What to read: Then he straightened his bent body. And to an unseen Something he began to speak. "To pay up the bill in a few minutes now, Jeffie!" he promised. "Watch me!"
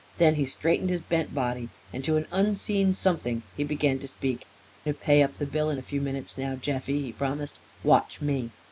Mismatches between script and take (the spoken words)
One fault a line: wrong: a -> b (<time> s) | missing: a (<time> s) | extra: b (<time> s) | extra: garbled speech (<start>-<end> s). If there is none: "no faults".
no faults